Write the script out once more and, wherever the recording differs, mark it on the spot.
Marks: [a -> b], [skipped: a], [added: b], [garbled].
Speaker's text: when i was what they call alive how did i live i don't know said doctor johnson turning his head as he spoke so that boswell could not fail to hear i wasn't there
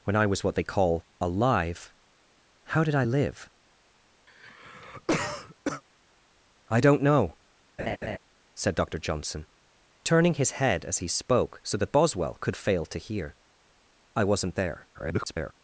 when i was what they call alive how did i live i don't know said doctor johnson turning his head as he spoke so that boswell could [skipped: not] fail to hear i wasn't there [garbled]